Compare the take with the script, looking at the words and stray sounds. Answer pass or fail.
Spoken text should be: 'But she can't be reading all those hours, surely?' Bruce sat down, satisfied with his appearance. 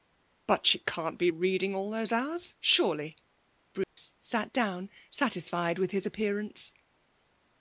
fail